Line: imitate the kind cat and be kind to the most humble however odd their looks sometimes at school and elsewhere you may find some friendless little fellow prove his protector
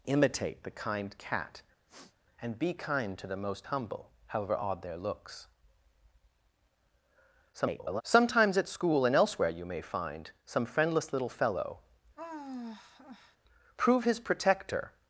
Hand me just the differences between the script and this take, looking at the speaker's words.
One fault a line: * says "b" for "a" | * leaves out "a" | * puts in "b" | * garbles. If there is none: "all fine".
* garbles